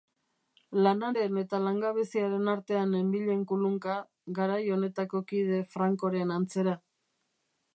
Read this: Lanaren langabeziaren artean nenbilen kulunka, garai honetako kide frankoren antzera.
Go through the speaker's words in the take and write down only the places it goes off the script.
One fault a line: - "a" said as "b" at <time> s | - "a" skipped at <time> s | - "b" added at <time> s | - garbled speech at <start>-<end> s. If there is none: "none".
- "eta" added at 1.4 s